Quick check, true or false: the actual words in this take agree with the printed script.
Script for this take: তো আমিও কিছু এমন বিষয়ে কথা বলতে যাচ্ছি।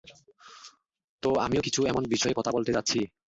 true